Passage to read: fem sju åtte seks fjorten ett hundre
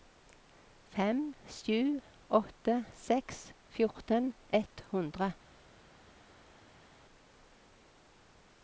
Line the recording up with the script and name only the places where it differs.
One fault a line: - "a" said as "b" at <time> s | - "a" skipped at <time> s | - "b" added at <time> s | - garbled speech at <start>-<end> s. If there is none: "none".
none